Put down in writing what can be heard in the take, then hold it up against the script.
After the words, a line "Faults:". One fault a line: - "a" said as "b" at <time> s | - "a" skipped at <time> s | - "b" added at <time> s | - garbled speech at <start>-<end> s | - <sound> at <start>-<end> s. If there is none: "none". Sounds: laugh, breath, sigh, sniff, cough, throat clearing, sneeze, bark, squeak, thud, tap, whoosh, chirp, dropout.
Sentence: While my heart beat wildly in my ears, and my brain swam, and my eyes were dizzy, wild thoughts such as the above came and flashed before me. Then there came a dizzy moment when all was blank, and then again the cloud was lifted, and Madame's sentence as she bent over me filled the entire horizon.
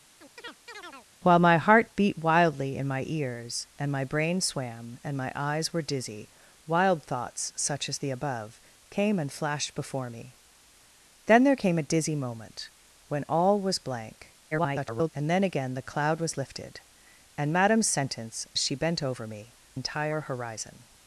While my heart beat wildly in my ears, and my brain swam, and my eyes were dizzy, wild thoughts such as the above came and flashed before me. Then there came a dizzy moment when all was blank, [garbled] and then again the cloud was lifted, and Madame's sentence she bent over me entire horizon.
Faults:
- chirp at 0.2-1.1 s
- garbled speech at 14.5-15.1 s
- "as" skipped at 18.5 s
- "filled the" skipped at 19.6 s